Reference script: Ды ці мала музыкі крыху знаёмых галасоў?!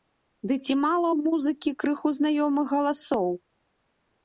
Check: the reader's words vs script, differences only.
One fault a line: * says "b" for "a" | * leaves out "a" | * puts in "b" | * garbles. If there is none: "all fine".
* puts in "ў"